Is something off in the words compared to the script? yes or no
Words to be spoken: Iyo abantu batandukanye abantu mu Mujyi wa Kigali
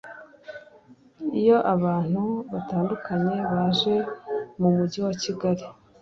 yes